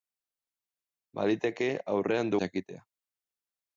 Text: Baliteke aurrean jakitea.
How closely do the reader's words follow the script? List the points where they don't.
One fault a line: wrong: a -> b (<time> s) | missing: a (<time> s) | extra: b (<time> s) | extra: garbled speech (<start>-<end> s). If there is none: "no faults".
no faults